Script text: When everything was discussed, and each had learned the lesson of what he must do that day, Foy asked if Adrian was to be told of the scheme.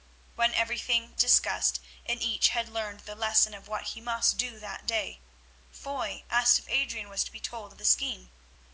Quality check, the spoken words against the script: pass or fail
fail